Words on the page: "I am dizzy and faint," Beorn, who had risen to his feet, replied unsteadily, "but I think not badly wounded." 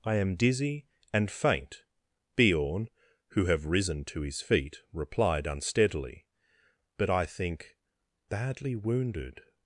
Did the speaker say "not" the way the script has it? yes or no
no